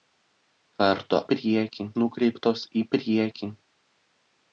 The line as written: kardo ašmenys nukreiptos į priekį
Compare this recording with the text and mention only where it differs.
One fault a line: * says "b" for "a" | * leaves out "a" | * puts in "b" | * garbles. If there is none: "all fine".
* says "priekį" for "ašmenys"